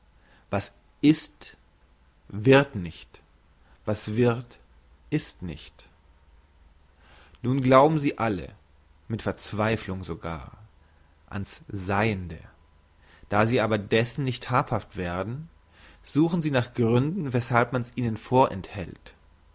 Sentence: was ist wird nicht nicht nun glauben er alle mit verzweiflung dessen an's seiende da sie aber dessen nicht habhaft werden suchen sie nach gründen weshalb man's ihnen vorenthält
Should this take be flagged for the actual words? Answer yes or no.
yes